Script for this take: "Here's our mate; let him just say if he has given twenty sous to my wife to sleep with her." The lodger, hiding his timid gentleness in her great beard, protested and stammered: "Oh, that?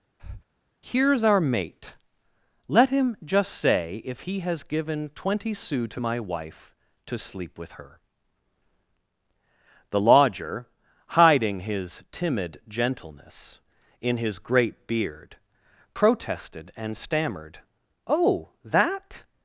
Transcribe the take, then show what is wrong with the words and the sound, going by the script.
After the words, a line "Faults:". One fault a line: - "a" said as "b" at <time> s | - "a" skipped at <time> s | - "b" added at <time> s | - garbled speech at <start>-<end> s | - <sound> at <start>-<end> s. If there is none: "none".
"Here's our mate; let him just say if he has given twenty sous to my wife to sleep with her." The lodger, hiding his timid gentleness in his great beard, protested and stammered: "Oh, that?
Faults:
- breath at 0.2-0.4 s
- "her" said as "his" at 14.2 s